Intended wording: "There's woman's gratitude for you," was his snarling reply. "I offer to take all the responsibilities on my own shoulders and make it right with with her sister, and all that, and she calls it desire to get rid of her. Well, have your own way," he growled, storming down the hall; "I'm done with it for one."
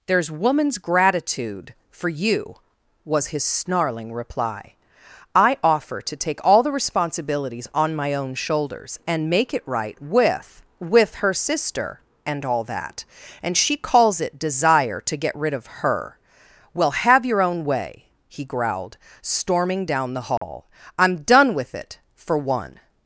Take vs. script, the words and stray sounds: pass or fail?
fail